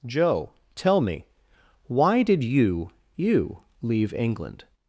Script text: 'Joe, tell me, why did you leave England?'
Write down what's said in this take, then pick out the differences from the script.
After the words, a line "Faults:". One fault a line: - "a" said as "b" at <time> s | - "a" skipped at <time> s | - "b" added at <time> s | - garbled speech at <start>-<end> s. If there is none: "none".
'Joe, tell me, why did you you leave England?'
Faults:
- "you" added at 3.1 s